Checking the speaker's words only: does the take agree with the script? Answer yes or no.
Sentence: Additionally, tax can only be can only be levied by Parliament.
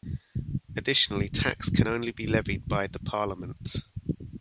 no